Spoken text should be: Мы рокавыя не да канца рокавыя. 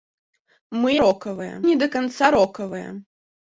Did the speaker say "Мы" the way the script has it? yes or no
yes